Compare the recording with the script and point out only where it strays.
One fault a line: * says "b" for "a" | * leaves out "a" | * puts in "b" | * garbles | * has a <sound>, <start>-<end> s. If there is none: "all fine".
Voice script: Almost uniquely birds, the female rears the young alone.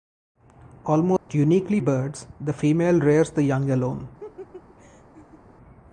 * has a dropout, 1.2-1.3 s
* has a laugh, 4.2-5.4 s